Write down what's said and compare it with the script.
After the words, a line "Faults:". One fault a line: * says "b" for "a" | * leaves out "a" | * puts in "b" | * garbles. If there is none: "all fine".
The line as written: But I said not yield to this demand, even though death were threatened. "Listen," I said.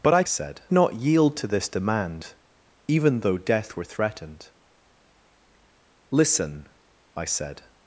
But I said not yield to this demand, even though death were threatened. "Listen," I said.
Faults:
all fine